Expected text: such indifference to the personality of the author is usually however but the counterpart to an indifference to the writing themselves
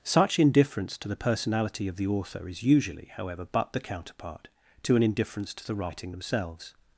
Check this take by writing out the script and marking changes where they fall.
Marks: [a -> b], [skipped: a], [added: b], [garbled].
such indifference to the personality of the author is usually however but the counterpart to an indifference to the writing themselves